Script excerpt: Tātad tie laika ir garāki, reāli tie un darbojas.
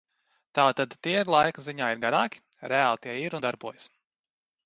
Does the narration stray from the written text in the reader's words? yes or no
yes